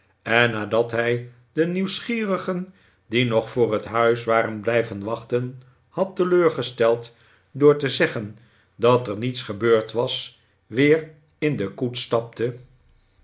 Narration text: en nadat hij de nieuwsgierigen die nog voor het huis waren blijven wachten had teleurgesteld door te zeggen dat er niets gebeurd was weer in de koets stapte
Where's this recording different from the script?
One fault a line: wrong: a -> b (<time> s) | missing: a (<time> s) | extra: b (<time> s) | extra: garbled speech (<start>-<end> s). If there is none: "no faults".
no faults